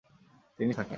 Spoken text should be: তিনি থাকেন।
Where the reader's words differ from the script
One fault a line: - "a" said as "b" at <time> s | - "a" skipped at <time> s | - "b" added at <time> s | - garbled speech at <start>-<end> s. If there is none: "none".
none